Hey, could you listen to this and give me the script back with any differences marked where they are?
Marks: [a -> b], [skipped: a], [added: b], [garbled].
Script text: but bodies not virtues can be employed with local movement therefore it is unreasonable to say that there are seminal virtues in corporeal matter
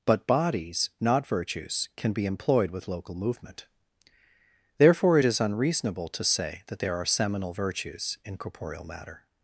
but bodies not virtues can be employed with local movement therefore it is unreasonable to say that there are seminal virtues in corporeal matter